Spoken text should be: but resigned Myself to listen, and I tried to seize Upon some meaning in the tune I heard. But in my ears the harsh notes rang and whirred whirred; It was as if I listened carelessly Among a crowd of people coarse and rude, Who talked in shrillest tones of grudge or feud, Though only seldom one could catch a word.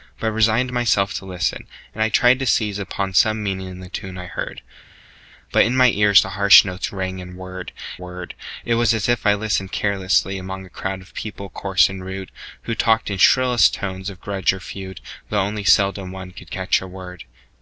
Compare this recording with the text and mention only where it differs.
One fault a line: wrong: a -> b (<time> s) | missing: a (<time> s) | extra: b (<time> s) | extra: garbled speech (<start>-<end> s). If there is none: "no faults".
no faults